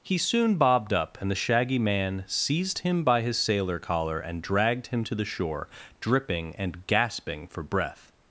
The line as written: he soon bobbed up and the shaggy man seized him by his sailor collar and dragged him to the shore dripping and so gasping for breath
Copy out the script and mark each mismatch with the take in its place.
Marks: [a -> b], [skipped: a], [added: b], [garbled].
he soon bobbed up and the shaggy man seized him by his sailor collar and dragged him to the shore dripping and [skipped: so] gasping for breath